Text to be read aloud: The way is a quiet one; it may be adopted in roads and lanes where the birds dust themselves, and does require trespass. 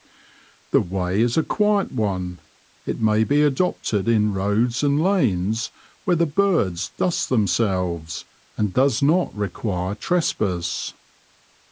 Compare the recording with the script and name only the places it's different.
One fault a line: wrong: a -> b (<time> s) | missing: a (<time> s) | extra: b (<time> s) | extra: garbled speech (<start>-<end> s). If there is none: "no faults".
extra: not (9.0 s)